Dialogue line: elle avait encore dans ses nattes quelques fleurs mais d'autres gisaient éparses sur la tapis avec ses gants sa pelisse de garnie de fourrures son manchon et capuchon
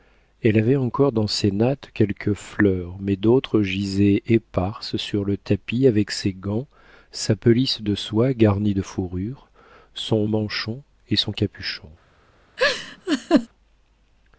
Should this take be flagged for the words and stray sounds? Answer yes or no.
yes